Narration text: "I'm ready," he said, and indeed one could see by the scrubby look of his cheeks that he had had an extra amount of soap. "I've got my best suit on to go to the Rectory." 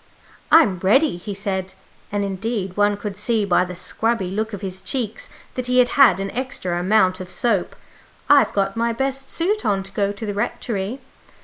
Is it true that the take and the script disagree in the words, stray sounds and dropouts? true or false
false